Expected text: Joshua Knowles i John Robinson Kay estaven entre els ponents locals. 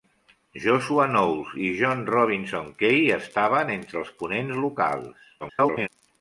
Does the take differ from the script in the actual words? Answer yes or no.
yes